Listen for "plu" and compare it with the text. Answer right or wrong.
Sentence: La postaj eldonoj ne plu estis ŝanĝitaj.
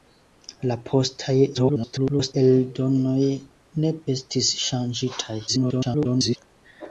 wrong